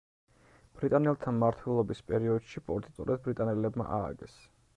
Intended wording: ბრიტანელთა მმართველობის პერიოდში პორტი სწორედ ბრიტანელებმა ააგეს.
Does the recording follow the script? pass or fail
pass